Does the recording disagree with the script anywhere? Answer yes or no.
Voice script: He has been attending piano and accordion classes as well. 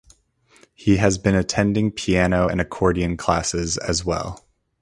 no